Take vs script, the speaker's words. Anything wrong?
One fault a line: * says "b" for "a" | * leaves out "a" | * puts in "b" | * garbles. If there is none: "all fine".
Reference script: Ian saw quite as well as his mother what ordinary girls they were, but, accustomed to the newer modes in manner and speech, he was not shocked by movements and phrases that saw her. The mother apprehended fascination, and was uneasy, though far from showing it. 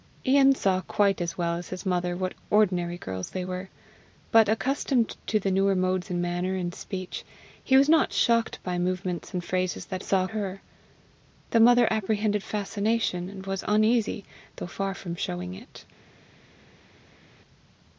all fine